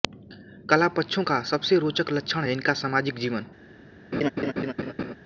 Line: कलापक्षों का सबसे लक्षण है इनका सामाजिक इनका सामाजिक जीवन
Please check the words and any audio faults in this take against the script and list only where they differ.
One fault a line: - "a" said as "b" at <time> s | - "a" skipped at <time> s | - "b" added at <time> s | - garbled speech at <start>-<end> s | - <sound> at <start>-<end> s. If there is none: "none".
- "रोचक" added at 1.8 s
- "इनका सामाजिक" skipped at 3.2 s
- laugh at 4.1-5.1 s